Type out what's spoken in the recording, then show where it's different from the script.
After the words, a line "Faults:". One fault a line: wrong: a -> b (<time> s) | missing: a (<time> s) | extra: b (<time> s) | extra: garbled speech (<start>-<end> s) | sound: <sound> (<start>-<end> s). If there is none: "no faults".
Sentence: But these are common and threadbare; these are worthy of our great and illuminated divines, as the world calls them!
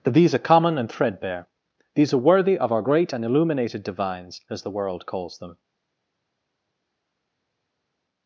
That these are common and threadbare; these are worthy of our great and illuminated divines, as the world calls them!
Faults:
wrong: But -> That (0.0 s)